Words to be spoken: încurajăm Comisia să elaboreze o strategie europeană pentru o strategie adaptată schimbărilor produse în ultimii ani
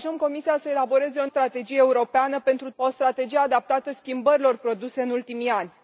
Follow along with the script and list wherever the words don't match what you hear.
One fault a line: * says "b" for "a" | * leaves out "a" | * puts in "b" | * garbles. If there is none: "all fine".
all fine